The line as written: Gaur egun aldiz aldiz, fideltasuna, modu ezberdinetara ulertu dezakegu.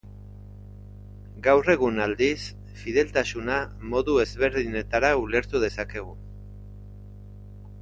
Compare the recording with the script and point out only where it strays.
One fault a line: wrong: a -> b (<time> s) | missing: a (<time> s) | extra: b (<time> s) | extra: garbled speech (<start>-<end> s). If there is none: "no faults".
missing: aldiz (2.4 s)